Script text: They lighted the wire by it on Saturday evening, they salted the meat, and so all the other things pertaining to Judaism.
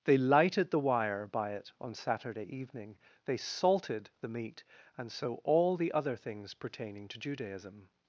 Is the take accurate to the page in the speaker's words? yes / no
yes